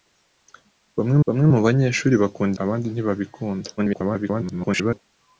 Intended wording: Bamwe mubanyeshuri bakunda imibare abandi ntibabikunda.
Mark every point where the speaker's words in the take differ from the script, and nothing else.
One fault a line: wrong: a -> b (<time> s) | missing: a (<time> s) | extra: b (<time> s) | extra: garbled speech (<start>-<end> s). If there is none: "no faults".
extra: bamwe (1.2 s)
missing: imibare (2.6 s)
extra: garbled speech (3.8-5.0 s)